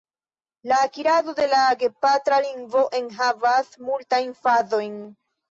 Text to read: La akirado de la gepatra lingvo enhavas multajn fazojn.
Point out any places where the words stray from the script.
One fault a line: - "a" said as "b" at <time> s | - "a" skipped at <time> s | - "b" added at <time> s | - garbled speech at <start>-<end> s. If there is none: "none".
none